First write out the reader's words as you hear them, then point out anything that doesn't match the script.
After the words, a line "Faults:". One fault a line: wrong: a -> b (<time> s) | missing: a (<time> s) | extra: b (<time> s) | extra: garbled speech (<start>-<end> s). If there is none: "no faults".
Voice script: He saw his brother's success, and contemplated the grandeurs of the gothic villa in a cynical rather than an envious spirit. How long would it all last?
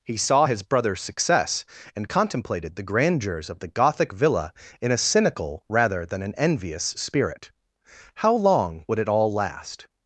He saw his brother's success, and contemplated the grandeurs of the gothic villa in a cynical rather than an envious spirit. How long would it all last?
Faults:
no faults